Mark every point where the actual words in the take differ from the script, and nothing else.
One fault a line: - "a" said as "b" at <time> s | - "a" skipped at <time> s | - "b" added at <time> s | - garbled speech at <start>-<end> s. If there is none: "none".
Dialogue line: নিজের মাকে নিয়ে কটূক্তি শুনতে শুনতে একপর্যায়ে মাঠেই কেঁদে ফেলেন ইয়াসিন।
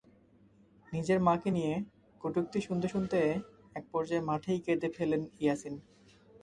none